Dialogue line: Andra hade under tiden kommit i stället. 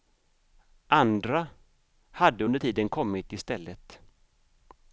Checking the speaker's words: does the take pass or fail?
pass